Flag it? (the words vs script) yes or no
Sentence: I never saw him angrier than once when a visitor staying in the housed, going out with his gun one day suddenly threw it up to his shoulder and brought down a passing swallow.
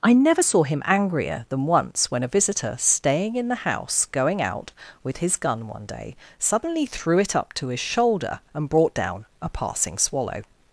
yes